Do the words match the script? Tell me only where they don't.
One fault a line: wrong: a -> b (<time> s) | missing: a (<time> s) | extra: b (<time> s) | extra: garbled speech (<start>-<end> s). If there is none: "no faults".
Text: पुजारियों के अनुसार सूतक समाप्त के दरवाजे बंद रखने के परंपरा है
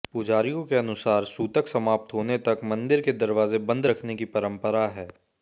extra: होने तक मंदिर (2.1 s)
wrong: के -> की (4.1 s)